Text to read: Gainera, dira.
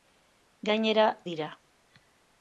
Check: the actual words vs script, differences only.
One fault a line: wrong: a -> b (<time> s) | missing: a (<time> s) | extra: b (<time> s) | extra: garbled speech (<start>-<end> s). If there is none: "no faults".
no faults